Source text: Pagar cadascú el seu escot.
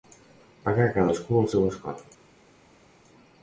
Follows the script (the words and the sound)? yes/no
yes